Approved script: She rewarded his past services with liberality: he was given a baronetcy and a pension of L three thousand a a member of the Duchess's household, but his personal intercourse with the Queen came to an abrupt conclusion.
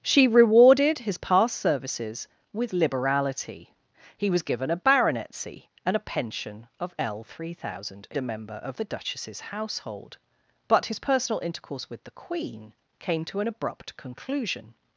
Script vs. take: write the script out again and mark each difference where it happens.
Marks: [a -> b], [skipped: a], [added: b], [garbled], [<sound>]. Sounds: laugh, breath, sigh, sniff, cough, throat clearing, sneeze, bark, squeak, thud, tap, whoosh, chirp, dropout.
She rewarded his past services with liberality: he was given a baronetcy and a pension of L three thousand a a member of the Duchess's household, but his personal intercourse with the Queen came to an abrupt conclusion.